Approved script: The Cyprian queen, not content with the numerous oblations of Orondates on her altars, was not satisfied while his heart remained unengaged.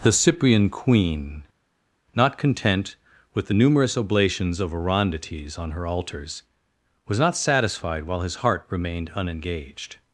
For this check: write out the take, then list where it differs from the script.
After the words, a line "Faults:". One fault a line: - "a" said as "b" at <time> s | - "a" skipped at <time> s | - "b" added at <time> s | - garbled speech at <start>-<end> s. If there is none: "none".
The Cyprian queen, not content with the numerous oblations of Orondates on her altars, was not satisfied while his heart remained unengaged.
Faults:
none